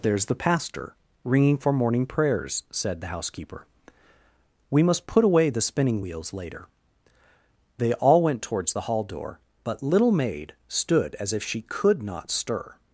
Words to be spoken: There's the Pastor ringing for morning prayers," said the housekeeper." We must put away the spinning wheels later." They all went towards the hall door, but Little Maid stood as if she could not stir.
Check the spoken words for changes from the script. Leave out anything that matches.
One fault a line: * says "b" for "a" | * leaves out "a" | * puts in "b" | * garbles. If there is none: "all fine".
all fine